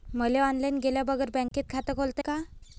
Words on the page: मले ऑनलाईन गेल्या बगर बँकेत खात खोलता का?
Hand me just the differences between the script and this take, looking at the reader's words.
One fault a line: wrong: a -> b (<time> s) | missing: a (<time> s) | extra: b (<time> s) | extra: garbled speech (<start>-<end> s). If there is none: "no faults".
no faults